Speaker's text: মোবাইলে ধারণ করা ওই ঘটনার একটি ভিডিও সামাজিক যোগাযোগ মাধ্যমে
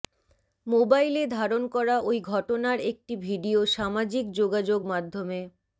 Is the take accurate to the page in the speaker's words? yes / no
yes